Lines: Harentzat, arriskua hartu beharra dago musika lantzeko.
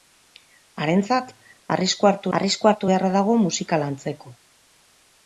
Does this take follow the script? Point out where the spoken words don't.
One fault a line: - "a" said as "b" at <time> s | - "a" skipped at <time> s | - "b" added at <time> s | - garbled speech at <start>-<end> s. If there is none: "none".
- "arriskua hartu" added at 2.4 s